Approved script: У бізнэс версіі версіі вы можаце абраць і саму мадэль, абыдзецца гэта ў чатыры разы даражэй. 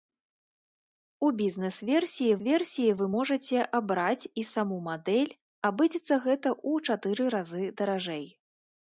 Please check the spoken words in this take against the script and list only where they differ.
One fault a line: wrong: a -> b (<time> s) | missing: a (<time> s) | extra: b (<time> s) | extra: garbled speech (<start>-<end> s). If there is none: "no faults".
no faults